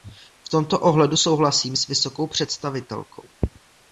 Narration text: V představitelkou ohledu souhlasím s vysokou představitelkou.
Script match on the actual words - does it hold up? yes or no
no